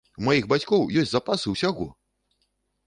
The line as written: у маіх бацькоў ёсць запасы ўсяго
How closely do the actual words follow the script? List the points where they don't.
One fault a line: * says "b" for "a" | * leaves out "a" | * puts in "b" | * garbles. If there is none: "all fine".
all fine